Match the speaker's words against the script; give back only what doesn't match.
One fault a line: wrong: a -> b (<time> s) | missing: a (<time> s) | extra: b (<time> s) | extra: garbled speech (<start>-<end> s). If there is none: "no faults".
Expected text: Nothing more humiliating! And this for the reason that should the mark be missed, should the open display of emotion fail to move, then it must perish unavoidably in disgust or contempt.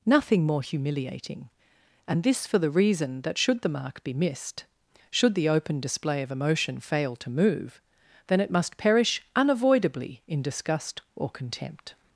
no faults